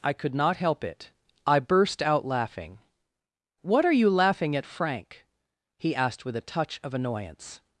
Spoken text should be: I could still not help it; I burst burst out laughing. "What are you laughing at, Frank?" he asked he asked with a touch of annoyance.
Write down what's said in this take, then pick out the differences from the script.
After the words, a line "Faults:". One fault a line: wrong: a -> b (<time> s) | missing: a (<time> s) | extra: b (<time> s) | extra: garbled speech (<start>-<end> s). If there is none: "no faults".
I could not help it; I burst out laughing. "What are you laughing at, Frank?" he asked with a touch of annoyance.
Faults:
missing: still (0.3 s)
missing: burst (2.0 s)
missing: he asked (6.2 s)